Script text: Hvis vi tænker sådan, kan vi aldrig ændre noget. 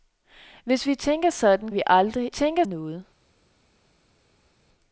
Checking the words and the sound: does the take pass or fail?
fail